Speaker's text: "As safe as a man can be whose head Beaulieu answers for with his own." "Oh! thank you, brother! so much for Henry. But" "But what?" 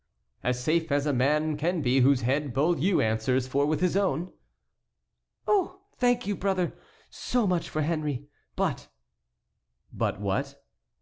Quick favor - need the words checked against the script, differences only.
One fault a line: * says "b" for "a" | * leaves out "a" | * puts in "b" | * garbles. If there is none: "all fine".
all fine